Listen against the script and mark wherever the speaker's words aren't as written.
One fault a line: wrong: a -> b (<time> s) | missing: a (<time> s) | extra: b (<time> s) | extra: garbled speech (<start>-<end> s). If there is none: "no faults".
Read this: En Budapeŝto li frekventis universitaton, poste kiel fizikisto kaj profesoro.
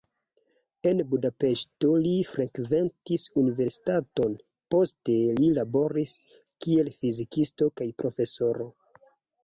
extra: li laboris (5.4 s)